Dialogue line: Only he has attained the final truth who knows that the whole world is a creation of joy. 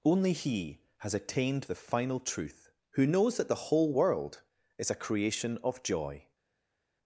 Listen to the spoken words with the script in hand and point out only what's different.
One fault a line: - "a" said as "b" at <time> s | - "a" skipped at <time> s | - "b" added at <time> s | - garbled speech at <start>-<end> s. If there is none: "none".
none